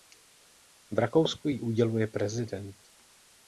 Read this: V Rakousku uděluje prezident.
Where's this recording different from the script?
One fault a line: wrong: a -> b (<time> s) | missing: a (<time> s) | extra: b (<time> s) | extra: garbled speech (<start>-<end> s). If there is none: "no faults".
extra: ji (1.5 s)